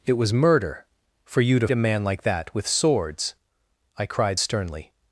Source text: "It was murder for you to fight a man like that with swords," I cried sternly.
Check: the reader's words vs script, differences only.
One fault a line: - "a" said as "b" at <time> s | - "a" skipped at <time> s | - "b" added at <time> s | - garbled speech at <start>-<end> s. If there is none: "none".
- "fight" skipped at 1.7 s